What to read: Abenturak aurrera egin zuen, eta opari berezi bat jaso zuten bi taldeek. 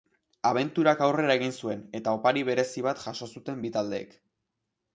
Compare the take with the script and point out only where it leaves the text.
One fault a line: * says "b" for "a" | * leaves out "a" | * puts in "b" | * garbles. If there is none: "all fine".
all fine